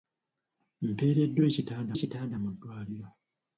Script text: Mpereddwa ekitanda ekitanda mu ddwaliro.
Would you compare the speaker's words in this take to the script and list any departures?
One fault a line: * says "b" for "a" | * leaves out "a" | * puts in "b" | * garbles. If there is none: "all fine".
all fine